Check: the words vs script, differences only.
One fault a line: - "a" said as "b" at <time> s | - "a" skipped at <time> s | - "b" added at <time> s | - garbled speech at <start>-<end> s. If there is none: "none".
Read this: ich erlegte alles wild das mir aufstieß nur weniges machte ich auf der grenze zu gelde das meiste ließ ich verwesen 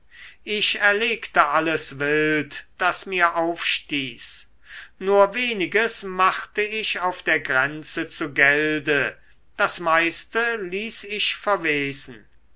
none